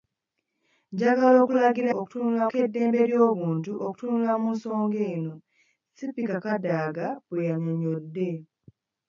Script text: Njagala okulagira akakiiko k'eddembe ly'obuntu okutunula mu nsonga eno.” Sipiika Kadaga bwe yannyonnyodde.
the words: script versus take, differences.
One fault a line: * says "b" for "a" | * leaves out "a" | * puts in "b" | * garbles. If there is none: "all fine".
* says "okutunula" for "akakiiko"